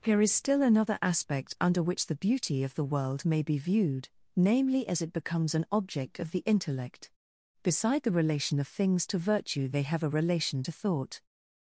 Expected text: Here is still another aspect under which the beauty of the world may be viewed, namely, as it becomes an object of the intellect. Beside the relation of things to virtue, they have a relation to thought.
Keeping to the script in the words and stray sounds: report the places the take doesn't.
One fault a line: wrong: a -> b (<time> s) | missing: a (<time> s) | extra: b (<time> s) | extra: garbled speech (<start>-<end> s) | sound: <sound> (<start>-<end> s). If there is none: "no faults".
no faults